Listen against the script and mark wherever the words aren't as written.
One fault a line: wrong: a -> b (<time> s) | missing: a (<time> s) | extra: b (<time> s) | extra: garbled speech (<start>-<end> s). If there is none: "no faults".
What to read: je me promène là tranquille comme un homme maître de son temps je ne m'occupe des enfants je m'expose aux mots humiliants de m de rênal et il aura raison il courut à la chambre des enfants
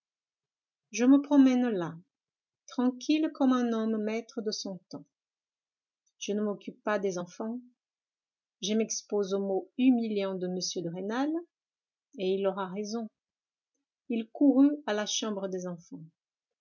extra: pas (6.8 s)